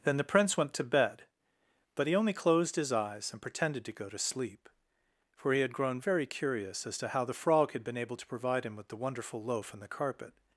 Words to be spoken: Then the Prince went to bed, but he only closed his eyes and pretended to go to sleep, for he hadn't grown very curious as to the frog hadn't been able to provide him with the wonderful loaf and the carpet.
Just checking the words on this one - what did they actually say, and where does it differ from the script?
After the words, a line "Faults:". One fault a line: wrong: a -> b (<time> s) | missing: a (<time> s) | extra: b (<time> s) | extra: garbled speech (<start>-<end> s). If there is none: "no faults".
Then the Prince went to bed, but he only closed his eyes and pretended to go to sleep, for he had grown very curious as to how the frog had been able to provide him with the wonderful loaf and the carpet.
Faults:
wrong: hadn't -> had (5.6 s)
extra: how (7.1 s)
wrong: hadn't -> had (7.7 s)